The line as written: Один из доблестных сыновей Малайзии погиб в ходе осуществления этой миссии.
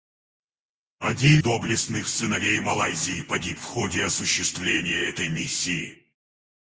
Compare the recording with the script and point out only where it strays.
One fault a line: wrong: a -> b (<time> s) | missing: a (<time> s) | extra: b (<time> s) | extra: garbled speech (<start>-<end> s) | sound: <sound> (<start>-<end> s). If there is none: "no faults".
missing: из (1.4 s)